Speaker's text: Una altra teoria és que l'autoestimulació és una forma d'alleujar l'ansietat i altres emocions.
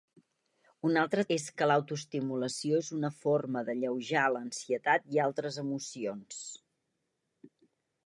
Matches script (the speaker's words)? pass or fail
fail